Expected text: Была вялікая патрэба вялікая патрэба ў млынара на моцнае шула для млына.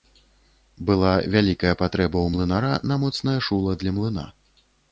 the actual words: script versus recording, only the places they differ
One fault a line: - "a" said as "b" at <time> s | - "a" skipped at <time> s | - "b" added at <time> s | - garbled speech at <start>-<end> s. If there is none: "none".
- "вялікая патрэба" skipped at 2.2 s